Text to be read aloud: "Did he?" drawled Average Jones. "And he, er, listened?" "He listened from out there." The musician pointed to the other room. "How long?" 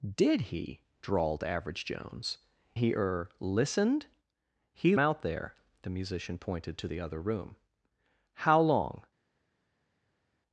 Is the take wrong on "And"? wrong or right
wrong